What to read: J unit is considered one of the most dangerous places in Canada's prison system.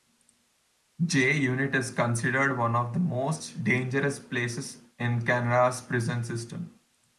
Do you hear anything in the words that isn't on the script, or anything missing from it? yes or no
no